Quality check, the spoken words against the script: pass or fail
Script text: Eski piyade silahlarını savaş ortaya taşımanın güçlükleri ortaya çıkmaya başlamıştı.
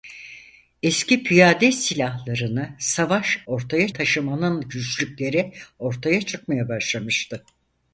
pass